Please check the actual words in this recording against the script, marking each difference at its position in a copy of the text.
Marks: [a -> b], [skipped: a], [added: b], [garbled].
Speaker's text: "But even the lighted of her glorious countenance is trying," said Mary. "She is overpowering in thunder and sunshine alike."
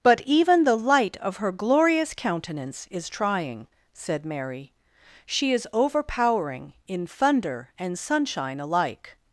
"But even the [lighted -> light] of her glorious countenance is trying," said Mary. "She is overpowering in thunder and sunshine alike."